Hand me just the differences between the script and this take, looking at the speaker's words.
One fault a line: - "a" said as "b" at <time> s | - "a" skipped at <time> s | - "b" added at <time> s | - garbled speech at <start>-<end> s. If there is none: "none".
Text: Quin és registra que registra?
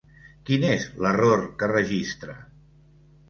- "registra" said as "l'error" at 1.1 s